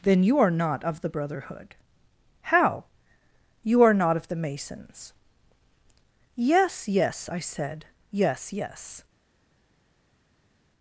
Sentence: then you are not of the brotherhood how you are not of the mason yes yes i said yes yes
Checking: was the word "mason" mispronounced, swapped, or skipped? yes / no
yes